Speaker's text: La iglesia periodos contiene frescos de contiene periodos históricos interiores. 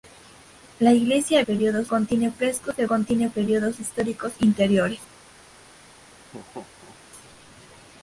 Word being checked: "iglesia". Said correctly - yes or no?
yes